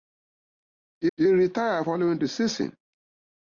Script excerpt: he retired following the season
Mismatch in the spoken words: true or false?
true